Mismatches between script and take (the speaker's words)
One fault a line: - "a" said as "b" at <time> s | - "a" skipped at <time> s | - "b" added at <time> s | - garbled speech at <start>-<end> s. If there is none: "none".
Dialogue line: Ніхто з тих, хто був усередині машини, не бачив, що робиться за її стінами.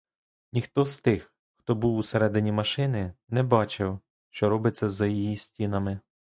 none